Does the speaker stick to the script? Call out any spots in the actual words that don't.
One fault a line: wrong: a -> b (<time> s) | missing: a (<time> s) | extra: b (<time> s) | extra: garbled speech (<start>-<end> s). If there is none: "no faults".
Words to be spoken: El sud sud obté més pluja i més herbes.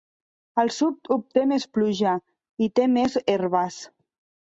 missing: sud (1.1 s)
extra: té (2.8 s)